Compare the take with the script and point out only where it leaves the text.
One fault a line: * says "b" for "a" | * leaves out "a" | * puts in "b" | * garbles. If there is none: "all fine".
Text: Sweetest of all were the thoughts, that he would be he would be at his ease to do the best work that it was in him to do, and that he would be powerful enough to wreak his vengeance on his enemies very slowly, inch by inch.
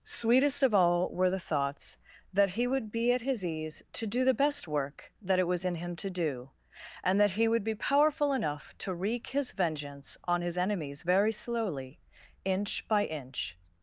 * leaves out "he would be"